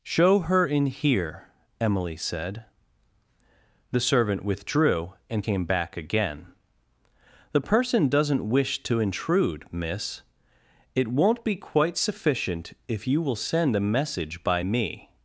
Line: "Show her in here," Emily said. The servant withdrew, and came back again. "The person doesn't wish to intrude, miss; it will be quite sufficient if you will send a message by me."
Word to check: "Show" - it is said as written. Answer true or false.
true